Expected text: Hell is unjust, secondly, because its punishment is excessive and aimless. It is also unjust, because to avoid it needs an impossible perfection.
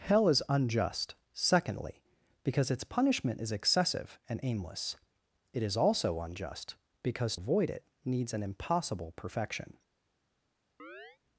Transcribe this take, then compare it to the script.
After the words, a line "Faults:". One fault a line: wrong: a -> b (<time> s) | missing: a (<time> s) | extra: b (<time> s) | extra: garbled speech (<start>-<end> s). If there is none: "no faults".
Hell is unjust, secondly, because its punishment is excessive and aimless. It is also unjust, because avoid it needs an impossible perfection.
Faults:
missing: to (7.4 s)